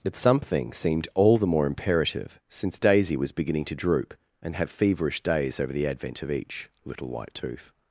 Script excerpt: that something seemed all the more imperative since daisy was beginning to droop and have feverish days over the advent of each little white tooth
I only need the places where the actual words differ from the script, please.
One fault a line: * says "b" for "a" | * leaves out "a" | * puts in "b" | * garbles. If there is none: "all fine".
* says "but" for "that"